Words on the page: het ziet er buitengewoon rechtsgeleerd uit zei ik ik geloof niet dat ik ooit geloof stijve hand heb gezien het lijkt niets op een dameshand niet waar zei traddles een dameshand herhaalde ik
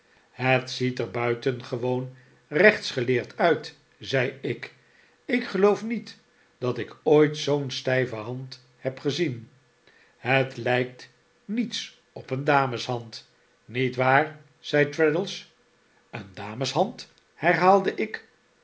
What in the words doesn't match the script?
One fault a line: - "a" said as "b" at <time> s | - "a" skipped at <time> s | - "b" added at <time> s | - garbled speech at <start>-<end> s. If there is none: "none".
- "geloof" said as "zoo'n" at 7.4 s